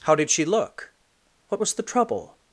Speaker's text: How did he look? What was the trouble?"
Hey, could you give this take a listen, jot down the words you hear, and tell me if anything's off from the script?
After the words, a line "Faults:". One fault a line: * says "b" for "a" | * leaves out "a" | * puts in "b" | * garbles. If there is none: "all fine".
How did she look? What was the trouble?"
Faults:
* says "she" for "he"